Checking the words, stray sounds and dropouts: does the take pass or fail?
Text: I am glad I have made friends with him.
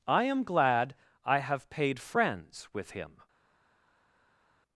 fail